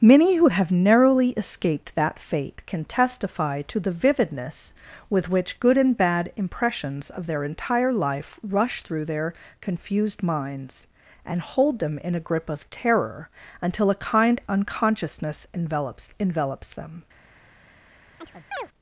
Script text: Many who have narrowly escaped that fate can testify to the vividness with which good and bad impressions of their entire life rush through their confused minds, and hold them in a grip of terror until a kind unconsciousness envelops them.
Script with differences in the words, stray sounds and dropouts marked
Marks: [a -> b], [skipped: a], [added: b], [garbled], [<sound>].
Many who have narrowly escaped that fate can testify to the vividness with which good and bad impressions of their entire life rush through their confused minds, and hold them in a grip of terror until a kind unconsciousness envelops [added: envelops] them. [chirp]